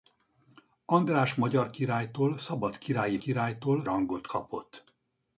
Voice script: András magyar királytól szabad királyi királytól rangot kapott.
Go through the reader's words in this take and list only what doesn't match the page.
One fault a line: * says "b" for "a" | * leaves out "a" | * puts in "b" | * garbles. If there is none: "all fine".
all fine